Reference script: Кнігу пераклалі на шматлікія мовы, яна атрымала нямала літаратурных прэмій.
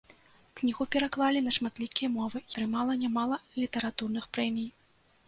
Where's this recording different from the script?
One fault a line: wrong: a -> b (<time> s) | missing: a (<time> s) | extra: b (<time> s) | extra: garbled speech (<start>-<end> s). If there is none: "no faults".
missing: яна (2.4 s)